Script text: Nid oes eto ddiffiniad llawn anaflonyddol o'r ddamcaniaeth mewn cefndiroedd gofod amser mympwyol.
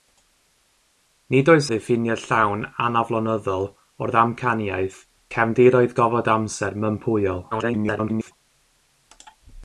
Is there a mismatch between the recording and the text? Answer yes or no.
yes